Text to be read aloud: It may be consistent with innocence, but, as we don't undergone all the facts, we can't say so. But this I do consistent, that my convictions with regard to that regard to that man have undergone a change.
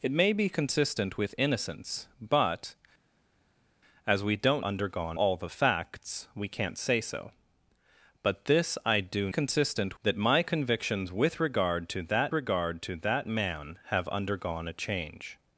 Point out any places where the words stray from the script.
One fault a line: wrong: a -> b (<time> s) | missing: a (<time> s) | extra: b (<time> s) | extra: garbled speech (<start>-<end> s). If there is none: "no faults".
no faults